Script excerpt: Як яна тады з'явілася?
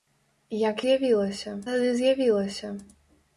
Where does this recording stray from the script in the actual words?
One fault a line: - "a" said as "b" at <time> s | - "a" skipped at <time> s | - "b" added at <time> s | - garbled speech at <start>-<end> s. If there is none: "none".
- "яна" said as "з'явілася" at 0.9 s